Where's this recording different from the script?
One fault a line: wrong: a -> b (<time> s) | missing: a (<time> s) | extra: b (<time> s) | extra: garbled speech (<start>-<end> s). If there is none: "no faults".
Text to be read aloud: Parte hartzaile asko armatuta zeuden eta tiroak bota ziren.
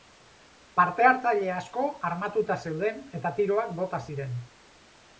no faults